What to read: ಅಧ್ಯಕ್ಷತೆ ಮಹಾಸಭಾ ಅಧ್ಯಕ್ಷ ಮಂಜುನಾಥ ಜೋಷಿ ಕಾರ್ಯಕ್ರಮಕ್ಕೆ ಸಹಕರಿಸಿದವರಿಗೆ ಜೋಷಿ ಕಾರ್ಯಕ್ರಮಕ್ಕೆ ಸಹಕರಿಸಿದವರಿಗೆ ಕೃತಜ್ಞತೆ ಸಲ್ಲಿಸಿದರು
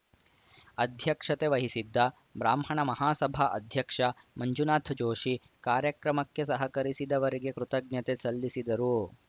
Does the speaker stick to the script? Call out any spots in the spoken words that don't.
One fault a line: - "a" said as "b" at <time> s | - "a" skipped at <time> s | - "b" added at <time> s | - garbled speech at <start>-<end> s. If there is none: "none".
- "ವಹಿಸಿದ್ದ ಬ್ರಾಹ್ಮಣ" added at 1.5 s
- "ಜೋಷಿ ಕಾರ್ಯಕ್ರಮಕ್ಕೆ ಸಹಕರಿಸಿದವರಿಗೆ" skipped at 7.5 s